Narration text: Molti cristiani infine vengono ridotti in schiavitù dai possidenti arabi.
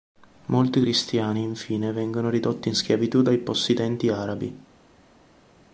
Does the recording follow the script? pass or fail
pass